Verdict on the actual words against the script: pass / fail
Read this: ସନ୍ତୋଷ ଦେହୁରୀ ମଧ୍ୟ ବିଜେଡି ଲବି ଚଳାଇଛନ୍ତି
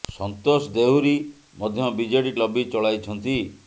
pass